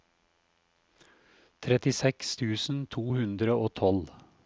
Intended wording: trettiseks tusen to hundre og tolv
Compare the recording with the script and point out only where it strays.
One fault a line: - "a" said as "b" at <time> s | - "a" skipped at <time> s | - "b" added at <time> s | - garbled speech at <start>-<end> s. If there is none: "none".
none